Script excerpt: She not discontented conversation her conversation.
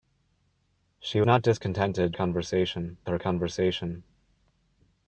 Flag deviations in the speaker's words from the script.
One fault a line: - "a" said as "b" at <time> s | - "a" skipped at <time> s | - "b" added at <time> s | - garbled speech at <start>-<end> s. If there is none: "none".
none